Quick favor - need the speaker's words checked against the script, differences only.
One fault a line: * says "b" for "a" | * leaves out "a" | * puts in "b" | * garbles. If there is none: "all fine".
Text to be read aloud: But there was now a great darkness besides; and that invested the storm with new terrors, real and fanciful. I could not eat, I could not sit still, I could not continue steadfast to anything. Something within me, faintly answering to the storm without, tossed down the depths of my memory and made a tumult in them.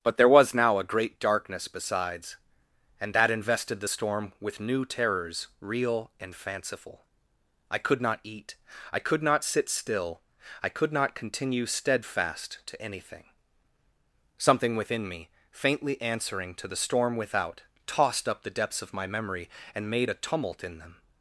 * says "up" for "down"